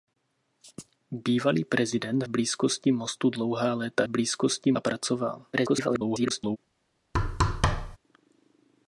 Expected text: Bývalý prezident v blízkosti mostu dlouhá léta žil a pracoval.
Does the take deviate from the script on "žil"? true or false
true